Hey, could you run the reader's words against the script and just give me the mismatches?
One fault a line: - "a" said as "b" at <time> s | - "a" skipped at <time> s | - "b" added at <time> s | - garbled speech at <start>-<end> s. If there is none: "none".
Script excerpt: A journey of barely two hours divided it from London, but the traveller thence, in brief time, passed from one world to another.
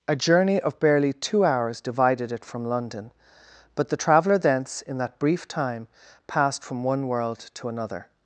- "that" added at 5.0 s